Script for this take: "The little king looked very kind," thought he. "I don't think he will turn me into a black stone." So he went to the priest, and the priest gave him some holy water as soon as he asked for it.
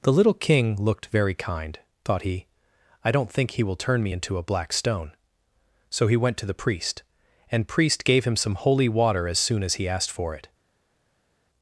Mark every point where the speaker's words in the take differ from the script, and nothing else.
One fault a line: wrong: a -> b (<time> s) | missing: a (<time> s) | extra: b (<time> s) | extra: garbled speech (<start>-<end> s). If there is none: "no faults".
missing: the (7.7 s)